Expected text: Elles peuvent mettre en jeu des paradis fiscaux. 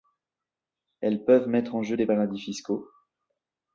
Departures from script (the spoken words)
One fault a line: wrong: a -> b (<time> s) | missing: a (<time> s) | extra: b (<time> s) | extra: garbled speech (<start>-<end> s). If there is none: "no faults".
no faults